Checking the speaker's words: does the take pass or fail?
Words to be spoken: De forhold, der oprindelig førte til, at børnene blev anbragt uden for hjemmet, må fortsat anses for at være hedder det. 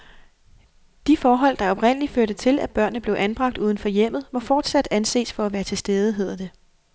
fail